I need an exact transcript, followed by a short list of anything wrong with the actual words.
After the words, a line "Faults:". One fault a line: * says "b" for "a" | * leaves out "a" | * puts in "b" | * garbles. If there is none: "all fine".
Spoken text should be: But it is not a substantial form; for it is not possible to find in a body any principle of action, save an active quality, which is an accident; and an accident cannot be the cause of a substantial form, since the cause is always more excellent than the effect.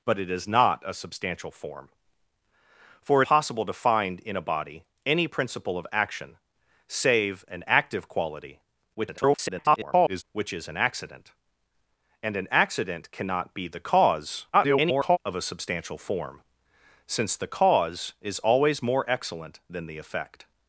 But it is not a substantial form; for it possible to find in a body any principle of action, save an active quality, [garbled] which is an accident; and an accident cannot be the cause [garbled] of a substantial form, since the cause is always more excellent than the effect.
Faults:
* leaves out "is not"
* garbles
* garbles